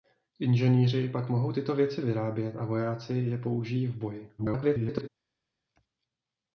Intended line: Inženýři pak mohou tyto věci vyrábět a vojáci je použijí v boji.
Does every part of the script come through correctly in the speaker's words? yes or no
no